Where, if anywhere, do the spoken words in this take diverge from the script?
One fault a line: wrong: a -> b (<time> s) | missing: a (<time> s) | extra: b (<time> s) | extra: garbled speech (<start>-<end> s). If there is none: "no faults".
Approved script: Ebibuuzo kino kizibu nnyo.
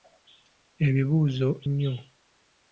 missing: kino kizibu (1.5 s)